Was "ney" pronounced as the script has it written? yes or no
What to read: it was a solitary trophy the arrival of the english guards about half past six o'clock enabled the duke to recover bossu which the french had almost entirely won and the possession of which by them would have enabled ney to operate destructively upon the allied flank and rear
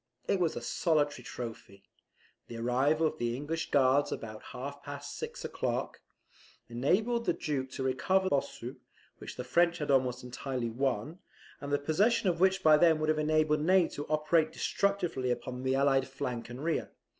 yes